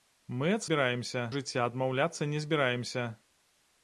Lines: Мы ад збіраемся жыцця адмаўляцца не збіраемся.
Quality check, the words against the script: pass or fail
pass